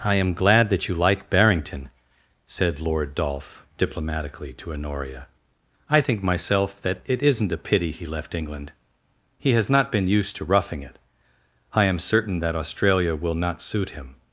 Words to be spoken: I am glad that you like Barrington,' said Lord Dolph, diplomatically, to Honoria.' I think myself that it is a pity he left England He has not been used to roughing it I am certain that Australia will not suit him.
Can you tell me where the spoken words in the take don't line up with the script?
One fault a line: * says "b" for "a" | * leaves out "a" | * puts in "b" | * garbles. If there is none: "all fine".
* says "isn't" for "is"